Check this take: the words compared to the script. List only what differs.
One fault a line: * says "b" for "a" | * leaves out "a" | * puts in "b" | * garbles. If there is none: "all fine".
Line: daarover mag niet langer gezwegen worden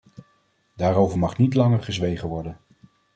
all fine